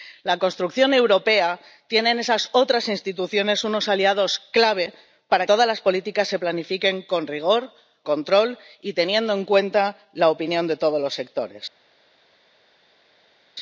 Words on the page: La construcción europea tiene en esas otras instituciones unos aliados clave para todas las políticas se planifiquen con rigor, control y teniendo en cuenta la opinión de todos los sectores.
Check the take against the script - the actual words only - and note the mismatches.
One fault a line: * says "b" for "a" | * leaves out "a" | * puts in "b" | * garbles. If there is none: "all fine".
all fine